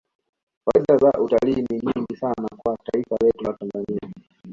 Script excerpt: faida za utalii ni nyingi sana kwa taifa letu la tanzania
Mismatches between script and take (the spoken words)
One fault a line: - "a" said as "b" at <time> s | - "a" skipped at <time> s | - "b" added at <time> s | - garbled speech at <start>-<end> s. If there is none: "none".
none